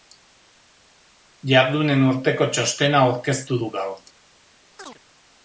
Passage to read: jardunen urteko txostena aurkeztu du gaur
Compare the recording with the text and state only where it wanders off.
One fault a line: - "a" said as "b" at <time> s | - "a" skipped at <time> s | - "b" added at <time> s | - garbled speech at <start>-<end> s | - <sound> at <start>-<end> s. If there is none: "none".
- chirp at 4.8-5.0 s